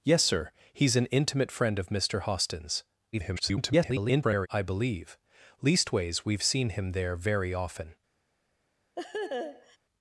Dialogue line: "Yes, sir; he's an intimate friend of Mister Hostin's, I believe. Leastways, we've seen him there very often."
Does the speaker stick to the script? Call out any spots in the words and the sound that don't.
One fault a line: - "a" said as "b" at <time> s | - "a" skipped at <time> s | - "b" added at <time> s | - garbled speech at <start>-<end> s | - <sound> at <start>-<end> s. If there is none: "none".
- garbled speech at 3.1-4.5 s
- laugh at 9.0-9.8 s